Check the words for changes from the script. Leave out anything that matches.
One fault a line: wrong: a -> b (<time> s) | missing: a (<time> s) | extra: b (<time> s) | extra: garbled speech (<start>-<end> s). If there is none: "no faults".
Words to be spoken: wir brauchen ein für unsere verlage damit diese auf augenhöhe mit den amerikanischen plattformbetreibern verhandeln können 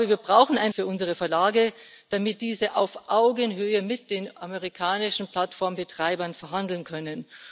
no faults